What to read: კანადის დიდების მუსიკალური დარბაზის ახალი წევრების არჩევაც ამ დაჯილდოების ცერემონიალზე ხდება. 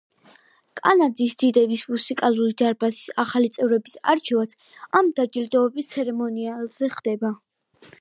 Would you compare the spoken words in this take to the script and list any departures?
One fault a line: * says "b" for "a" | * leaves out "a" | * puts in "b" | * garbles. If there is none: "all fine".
all fine